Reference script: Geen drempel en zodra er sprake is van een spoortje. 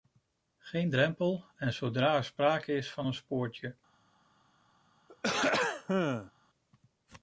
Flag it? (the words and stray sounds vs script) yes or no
yes